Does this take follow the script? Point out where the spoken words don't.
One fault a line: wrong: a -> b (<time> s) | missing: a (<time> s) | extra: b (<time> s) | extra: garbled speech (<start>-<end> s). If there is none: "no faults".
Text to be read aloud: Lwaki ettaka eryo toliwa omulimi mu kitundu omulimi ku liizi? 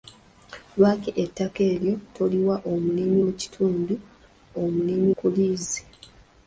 no faults